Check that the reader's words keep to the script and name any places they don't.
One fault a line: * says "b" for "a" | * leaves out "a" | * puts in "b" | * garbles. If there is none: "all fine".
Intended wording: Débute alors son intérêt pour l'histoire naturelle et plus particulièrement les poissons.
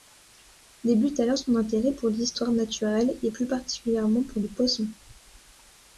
* puts in "pour"